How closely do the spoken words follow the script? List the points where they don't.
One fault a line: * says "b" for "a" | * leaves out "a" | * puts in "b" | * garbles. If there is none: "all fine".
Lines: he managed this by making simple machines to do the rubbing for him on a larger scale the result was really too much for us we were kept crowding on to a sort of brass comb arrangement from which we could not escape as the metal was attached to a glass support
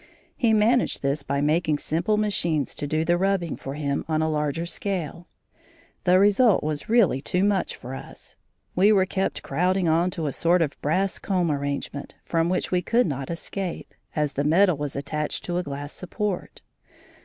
all fine